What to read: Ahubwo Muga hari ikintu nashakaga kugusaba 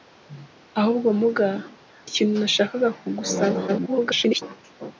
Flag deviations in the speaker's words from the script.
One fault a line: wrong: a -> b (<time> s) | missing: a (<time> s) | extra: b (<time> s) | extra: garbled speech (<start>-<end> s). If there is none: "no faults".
missing: hari (1.5 s)
extra: garbled speech (3.7-4.4 s)